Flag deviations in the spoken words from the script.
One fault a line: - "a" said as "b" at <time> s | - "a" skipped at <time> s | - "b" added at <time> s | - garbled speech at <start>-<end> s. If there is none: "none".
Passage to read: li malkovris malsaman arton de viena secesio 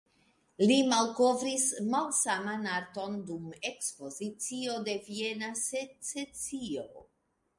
- "dum ekspozicio" added at 3.3 s